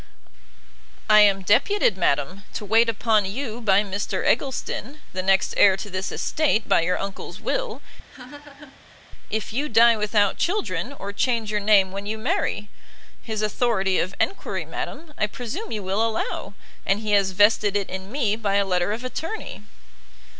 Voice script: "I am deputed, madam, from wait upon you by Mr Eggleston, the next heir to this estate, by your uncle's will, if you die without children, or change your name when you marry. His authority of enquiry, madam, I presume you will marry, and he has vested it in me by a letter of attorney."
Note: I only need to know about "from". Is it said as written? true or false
false